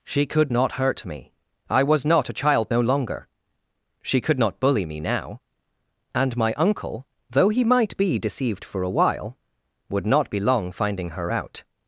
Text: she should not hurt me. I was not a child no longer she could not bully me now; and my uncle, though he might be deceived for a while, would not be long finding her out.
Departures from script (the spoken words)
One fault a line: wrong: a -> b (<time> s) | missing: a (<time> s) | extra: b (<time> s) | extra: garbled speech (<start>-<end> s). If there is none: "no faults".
wrong: should -> could (0.2 s)